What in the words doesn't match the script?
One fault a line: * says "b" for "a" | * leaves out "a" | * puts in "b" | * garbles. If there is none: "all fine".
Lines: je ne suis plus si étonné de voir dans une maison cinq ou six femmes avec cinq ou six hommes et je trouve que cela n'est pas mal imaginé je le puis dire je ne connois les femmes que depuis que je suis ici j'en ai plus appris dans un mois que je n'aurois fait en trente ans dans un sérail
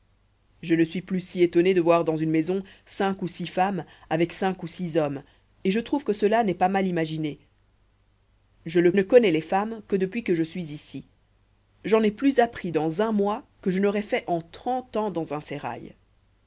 * leaves out "puis dire je"